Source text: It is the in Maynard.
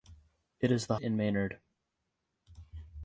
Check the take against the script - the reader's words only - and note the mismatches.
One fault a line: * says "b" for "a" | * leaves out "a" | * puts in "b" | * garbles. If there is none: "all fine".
all fine